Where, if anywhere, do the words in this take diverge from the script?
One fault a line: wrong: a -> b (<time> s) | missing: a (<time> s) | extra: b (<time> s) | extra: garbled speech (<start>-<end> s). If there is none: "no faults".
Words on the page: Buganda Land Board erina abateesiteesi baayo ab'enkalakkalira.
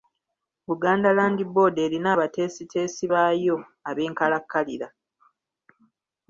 no faults